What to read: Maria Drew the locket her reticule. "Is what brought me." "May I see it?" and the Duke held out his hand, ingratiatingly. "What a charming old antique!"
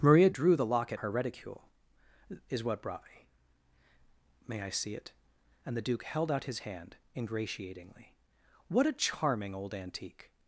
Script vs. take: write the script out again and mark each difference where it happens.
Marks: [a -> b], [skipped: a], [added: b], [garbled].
Maria Drew the locket her reticule. "Is what brought me." "May I see it?" and the Duke held out his hand, ingratiatingly. "What a charming old antique!"